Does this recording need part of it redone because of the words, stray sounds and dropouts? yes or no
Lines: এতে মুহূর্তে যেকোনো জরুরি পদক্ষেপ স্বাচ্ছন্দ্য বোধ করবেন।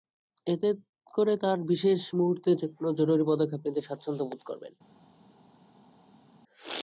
yes